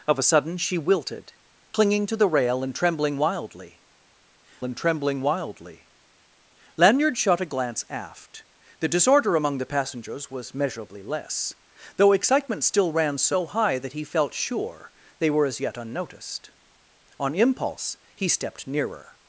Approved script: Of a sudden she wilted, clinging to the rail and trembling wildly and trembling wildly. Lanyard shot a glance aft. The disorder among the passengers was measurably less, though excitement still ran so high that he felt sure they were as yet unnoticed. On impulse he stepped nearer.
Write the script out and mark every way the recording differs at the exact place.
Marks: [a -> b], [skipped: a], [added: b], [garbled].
Of a sudden she wilted, clinging to the rail and trembling wildly and trembling wildly. Lanyard shot a glance aft. The disorder among the passengers was measurably less, though excitement still ran so high that he felt sure they were as yet unnoticed. On impulse he stepped nearer.